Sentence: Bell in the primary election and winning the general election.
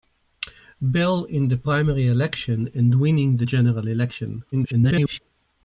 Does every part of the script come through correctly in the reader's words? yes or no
no